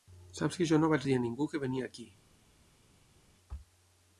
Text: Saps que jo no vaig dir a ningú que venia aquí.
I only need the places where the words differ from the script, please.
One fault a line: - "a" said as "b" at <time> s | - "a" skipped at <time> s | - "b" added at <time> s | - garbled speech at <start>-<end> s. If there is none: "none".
none